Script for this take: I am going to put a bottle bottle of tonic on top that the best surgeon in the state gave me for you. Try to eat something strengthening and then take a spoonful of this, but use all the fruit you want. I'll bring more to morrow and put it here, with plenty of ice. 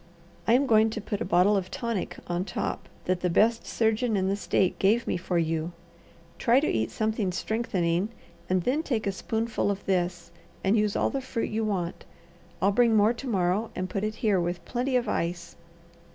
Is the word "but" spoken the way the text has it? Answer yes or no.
no